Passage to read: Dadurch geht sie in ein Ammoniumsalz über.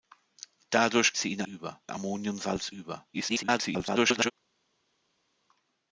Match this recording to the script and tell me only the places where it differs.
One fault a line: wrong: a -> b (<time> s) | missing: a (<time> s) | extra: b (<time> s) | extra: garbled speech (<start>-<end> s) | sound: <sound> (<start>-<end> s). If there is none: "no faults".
missing: geht (1.1 s)
wrong: ein -> über (1.4 s)
extra: garbled speech (3.1-4.3 s)